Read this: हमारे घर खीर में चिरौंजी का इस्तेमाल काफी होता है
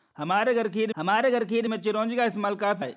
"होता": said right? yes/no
no